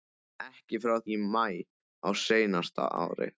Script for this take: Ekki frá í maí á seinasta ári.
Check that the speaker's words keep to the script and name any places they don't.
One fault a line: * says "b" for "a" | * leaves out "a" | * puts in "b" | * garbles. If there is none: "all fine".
all fine